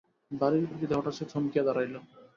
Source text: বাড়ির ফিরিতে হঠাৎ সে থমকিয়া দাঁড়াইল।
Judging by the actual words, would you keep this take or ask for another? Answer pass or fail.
pass